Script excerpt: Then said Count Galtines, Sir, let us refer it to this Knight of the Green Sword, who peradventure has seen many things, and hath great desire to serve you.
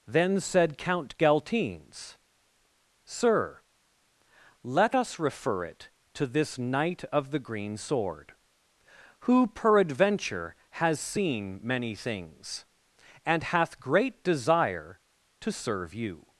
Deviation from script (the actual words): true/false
false